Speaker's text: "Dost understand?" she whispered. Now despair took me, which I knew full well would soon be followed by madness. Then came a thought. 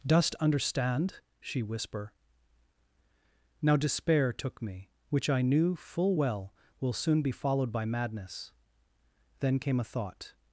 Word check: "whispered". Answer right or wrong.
wrong